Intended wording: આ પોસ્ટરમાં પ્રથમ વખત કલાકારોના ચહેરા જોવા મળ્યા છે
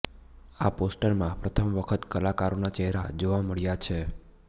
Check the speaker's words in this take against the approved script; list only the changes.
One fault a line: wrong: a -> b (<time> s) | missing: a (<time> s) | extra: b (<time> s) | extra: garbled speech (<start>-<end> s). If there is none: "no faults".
no faults